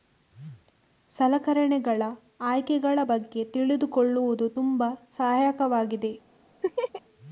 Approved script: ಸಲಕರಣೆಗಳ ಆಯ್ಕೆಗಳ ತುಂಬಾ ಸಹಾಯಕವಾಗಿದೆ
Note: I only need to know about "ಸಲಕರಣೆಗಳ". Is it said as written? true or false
true